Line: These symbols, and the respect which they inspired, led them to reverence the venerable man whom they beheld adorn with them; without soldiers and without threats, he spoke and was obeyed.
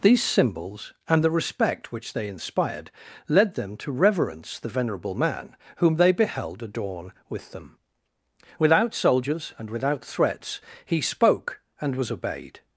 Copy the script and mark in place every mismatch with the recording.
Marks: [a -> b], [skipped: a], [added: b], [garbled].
These symbols, and the respect which they inspired, led them to reverence the venerable man whom they beheld adorn with them; without soldiers and without threats, he spoke and was obeyed.